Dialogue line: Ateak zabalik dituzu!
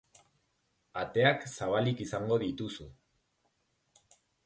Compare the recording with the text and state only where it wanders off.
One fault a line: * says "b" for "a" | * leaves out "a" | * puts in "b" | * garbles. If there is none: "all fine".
* puts in "izango"